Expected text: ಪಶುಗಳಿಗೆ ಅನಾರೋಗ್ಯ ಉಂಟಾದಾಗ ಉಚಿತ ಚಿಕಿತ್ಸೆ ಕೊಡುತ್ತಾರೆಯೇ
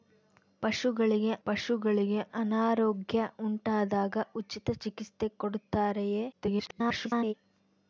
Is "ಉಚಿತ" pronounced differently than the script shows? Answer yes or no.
no